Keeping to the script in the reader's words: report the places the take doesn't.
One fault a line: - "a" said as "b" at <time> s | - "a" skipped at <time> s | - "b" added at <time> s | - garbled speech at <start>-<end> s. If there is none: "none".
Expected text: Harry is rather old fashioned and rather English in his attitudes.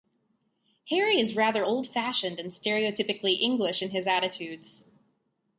- "rather" said as "stereotypically" at 2.5 s